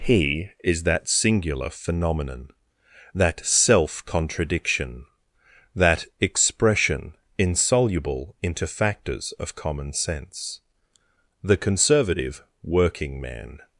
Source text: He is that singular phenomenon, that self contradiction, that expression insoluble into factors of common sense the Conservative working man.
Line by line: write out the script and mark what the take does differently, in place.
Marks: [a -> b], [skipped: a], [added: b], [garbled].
He is that singular phenomenon, that self contradiction, that expression insoluble into factors of common sense the Conservative working man.